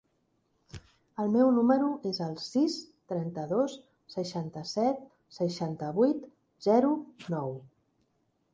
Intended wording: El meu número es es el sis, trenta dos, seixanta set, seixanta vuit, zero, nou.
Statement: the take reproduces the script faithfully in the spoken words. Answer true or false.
false